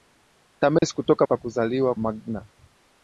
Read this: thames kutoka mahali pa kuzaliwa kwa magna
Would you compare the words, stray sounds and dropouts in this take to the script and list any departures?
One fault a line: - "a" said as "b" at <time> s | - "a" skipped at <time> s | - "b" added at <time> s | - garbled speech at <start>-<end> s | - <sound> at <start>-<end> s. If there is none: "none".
- dropout at 0.8-0.8 s
- "mahali" skipped at 1.3 s
- "kwa" skipped at 2.0 s